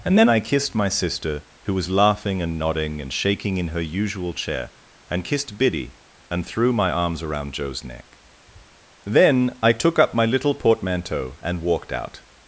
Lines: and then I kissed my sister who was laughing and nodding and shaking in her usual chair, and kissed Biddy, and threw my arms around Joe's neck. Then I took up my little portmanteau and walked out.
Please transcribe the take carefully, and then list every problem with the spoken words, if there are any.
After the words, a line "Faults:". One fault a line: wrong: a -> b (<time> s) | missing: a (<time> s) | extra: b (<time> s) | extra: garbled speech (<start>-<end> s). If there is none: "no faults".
and then I kissed my sister who was laughing and nodding and shaking in her usual chair, and kissed Biddy, and threw my arms around Joe's neck. Then I took up my little portmanteau and walked out.
Faults:
no faults